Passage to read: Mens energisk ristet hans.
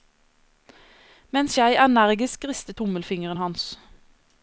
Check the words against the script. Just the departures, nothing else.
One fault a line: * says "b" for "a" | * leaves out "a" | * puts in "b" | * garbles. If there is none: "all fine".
* puts in "jeg"
* puts in "tommelfingeren"